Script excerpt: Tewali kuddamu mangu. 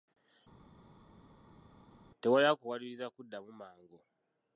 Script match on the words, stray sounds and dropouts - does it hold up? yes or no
no